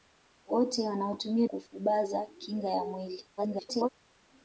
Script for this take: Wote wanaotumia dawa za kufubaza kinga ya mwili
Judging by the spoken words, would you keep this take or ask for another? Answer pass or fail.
fail